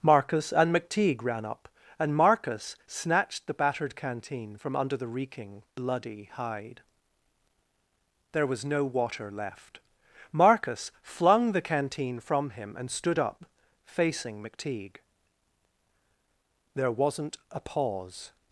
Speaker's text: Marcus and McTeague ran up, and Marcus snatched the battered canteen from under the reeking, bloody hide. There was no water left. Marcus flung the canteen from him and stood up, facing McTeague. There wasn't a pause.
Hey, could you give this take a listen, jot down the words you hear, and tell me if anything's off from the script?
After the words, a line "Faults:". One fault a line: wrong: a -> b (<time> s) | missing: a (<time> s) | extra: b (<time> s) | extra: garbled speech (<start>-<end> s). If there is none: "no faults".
Marcus and McTeague ran up, and Marcus snatched the battered canteen from under the reeking, bloody hide. There was no water left. Marcus flung the canteen from him and stood up, facing McTeague. There wasn't a pause.
Faults:
no faults